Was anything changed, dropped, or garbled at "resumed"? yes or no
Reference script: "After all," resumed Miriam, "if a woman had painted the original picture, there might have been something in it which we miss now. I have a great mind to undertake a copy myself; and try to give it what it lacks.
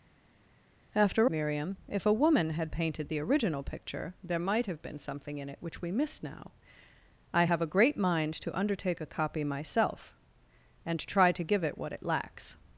yes